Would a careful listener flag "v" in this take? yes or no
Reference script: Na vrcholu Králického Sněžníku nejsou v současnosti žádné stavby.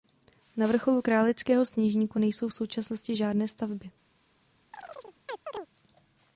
no